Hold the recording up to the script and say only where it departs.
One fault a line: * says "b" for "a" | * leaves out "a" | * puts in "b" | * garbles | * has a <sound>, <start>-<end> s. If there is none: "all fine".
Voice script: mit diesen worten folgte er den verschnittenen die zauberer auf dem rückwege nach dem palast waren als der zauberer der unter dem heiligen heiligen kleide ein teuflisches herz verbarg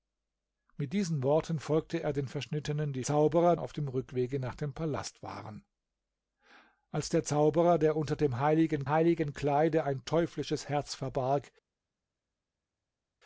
all fine